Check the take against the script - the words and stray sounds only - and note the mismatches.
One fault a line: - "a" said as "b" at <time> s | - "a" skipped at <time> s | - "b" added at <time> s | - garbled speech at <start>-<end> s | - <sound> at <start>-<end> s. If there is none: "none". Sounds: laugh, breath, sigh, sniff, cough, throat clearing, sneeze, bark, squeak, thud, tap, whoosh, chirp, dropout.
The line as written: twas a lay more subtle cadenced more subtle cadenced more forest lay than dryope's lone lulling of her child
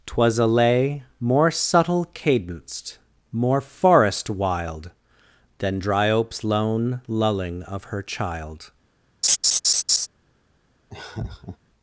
- "subtle cadenced more" skipped at 3.6 s
- "lay" said as "wild" at 4.3 s
- laugh at 9.2-10.1 s
- laugh at 10.9-11.6 s